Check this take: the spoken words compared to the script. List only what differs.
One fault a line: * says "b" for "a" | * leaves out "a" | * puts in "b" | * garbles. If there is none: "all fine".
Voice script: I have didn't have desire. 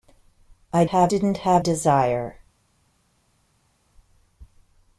all fine